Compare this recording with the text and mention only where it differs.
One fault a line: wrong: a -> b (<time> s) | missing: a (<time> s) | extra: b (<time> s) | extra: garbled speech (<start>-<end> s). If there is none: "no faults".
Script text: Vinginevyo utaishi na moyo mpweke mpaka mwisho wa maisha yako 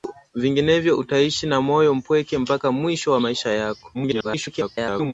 extra: garbled speech (3.9-5.1 s)